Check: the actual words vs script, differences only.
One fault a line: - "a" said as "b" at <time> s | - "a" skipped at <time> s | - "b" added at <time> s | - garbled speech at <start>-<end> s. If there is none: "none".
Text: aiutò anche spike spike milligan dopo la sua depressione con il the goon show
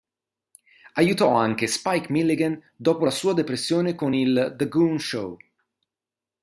- "spike" skipped at 2.1 s